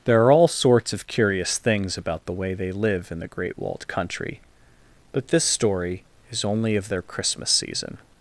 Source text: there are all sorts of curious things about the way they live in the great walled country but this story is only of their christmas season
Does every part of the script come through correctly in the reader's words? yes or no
yes